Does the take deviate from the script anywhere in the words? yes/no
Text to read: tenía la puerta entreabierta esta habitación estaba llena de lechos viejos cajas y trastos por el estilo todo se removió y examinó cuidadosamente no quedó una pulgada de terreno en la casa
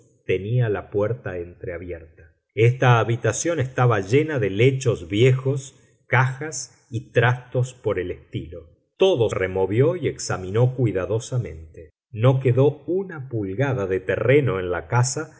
yes